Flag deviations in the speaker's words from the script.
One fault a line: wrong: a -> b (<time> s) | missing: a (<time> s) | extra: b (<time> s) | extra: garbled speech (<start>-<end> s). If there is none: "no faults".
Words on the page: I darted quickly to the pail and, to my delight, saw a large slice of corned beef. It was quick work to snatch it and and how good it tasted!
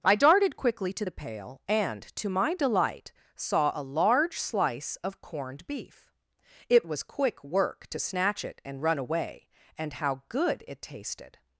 extra: run away (8.8 s)